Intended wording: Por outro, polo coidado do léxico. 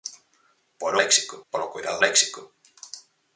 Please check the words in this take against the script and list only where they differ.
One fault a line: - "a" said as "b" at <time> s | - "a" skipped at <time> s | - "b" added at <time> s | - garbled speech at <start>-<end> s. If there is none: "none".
- "outro" said as "léxico" at 1.0 s
- "do" skipped at 2.0 s